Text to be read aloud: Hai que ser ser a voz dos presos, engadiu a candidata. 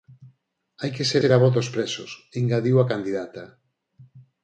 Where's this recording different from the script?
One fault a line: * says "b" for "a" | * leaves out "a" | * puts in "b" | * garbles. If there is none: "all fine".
all fine